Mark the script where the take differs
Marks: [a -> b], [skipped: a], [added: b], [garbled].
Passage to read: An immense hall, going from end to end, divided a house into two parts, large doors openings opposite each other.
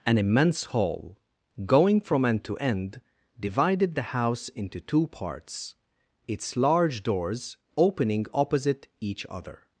An immense hall, going from end to end, divided [a -> the] house into two parts, [added: its] large doors [openings -> opening] opposite each other.